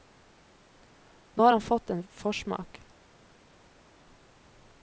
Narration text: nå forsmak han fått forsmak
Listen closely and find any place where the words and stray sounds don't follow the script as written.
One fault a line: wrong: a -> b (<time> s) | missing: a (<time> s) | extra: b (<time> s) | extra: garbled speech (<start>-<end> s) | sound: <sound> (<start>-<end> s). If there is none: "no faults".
wrong: forsmak -> har (1.4 s)
extra: en (1.9 s)